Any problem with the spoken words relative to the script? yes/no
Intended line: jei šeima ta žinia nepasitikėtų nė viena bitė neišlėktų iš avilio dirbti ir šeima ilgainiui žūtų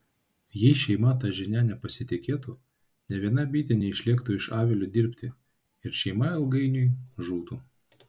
no